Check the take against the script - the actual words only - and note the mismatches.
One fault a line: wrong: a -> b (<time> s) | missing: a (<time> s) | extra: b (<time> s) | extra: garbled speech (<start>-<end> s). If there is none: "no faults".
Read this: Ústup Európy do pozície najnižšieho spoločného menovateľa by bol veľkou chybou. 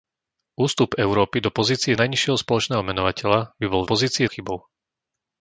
wrong: veľkou -> pozície (3.9 s)